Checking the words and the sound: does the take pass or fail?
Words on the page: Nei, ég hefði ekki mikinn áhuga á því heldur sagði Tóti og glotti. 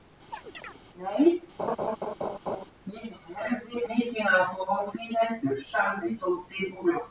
fail